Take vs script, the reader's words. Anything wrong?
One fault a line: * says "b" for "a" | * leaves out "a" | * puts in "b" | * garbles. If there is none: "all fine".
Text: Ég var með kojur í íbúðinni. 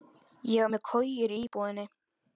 all fine